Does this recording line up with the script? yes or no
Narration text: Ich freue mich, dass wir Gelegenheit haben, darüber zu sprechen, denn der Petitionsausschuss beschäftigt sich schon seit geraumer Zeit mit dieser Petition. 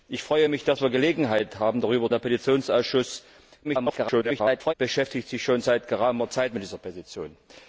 no